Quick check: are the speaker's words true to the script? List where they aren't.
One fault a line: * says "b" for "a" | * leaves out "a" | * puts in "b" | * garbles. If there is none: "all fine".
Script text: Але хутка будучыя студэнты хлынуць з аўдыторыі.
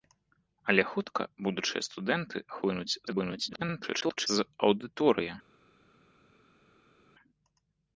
* garbles